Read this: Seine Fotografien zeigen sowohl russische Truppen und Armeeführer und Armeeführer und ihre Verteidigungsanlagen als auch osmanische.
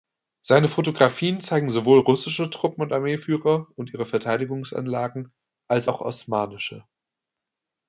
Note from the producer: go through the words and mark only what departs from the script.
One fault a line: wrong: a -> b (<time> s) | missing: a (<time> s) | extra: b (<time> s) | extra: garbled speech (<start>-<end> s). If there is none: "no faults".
missing: Armeeführer und (3.9 s)